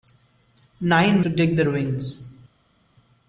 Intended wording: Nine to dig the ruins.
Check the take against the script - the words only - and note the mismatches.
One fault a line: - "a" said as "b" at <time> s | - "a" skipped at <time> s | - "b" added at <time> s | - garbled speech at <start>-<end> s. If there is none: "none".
none